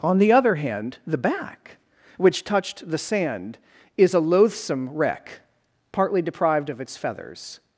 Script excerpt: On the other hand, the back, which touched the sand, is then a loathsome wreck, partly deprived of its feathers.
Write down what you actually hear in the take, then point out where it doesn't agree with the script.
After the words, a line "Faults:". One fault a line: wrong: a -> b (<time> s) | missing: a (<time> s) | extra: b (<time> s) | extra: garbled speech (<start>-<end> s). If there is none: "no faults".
On the other hand, the back, which touched the sand, is a loathsome wreck, partly deprived of its feathers.
Faults:
missing: then (4.1 s)